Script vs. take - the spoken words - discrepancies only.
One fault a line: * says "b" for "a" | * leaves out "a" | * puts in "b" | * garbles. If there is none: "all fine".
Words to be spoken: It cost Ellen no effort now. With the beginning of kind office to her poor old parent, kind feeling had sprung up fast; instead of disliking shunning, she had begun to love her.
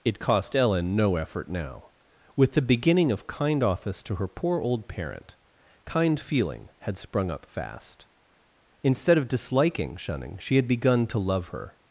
all fine